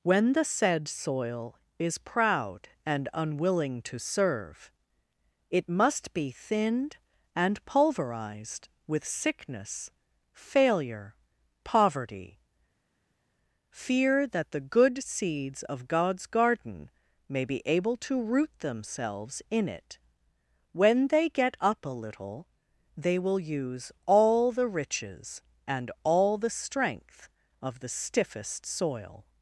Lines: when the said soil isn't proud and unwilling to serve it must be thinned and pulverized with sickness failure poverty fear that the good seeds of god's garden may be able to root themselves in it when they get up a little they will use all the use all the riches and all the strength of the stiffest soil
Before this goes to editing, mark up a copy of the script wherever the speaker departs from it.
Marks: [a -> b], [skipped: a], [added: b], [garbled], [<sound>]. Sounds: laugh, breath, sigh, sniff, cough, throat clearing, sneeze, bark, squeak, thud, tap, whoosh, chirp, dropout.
when the said soil [isn't -> is] proud and unwilling to serve it must be thinned and pulverized with sickness failure poverty fear that the good seeds of god's garden may be able to root themselves in it when they get up a little they will use all the [skipped: use all the] riches and all the strength of the stiffest soil